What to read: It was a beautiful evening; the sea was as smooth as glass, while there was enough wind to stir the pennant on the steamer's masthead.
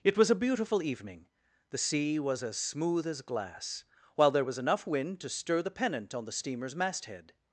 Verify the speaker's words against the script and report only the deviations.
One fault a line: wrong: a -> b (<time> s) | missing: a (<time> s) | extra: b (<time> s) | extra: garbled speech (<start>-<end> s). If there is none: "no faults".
no faults